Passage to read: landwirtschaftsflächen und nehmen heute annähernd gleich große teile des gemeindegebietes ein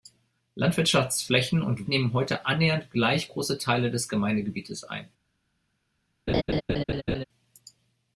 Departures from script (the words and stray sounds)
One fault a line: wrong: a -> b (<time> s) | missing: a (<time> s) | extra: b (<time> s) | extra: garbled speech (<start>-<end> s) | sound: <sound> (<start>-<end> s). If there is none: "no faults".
sound: laugh (6.3-7.2 s)